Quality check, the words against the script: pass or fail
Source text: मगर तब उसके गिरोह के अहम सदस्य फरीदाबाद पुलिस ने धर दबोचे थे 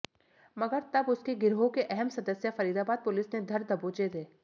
pass